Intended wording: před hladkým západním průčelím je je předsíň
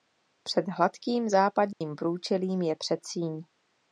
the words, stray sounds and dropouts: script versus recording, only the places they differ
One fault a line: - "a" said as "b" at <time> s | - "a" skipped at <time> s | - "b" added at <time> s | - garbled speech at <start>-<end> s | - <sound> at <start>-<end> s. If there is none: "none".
- dropout at 1.7-1.8 s
- "je" skipped at 2.8 s